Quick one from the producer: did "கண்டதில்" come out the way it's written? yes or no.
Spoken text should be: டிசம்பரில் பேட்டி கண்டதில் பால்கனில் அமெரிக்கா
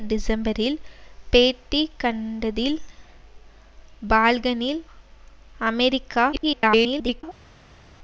yes